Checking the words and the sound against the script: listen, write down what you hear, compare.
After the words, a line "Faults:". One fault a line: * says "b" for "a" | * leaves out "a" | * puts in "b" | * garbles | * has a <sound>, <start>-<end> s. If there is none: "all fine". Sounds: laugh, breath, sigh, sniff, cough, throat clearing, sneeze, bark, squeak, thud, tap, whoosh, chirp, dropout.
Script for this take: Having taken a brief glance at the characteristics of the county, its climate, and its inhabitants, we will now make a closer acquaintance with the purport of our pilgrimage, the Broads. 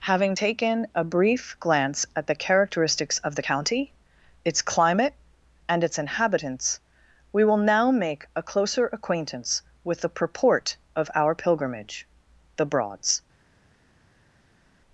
Having taken a brief glance at the characteristics of the county, its climate, and its inhabitants, we will now make a closer acquaintance with the purport of our pilgrimage, the Broads.
Faults:
all fine